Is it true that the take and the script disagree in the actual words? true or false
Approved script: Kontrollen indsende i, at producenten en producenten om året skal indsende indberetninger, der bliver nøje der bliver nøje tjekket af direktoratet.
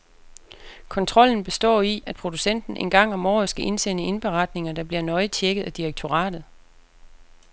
true